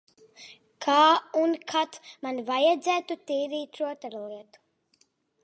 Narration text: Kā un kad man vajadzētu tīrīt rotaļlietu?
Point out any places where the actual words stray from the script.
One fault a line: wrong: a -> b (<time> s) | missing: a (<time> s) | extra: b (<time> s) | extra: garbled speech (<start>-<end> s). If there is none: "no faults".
no faults